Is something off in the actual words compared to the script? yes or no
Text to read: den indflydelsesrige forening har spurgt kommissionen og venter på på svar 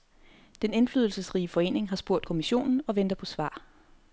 yes